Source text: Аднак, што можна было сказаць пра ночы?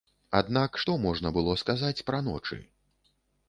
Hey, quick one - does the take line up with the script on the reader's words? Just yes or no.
yes